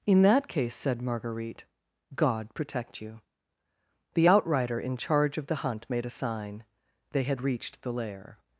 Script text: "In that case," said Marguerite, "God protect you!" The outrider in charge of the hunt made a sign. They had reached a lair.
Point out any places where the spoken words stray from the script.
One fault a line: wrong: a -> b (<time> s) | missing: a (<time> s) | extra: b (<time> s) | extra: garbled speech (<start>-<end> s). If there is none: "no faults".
wrong: a -> the (7.8 s)